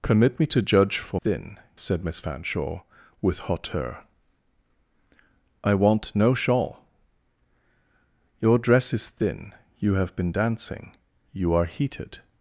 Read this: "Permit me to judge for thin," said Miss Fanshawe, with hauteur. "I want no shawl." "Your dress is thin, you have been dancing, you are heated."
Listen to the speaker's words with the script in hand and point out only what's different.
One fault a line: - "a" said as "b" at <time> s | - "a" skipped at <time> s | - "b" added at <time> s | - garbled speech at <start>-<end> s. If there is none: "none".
none